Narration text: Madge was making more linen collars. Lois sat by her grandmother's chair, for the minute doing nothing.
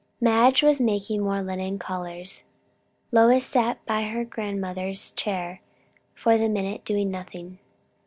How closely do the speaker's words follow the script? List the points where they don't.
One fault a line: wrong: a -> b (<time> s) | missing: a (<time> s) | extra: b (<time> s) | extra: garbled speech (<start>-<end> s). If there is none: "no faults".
no faults